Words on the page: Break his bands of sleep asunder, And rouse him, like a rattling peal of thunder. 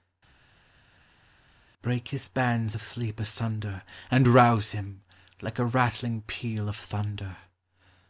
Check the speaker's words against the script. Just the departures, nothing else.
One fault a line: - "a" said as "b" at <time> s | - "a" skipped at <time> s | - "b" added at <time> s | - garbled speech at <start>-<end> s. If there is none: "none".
none